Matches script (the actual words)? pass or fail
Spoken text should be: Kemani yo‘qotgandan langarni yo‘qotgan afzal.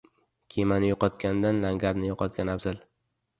pass